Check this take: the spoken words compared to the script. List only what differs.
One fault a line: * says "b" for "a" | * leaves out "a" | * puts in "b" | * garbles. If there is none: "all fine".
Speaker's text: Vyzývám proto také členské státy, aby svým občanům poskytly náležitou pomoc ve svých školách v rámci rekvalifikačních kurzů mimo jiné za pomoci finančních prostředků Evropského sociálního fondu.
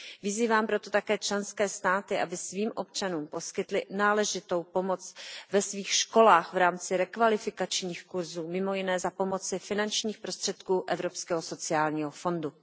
all fine